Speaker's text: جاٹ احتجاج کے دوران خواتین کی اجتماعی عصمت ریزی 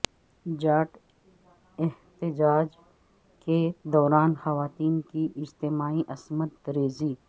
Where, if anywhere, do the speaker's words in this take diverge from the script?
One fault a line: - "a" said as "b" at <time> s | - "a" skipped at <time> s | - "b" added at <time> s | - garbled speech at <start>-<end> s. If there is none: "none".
none